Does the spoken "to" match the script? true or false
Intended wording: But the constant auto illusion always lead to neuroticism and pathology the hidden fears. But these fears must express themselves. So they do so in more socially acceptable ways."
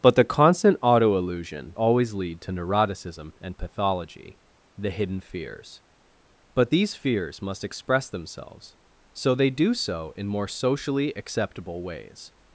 true